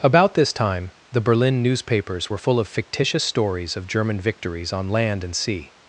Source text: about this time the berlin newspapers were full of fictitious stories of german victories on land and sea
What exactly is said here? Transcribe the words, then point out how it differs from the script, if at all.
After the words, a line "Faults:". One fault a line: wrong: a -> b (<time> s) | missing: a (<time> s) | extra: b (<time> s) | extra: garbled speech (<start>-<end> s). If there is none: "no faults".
about this time the berlin newspapers were full of fictitious stories of german victories on land and sea
Faults:
no faults